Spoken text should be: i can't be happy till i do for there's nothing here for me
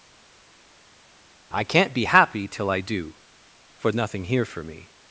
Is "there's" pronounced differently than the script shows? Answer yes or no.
yes